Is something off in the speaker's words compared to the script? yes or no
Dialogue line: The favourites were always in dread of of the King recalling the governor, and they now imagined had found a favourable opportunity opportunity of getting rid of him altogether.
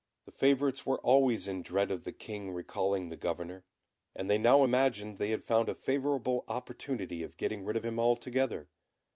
yes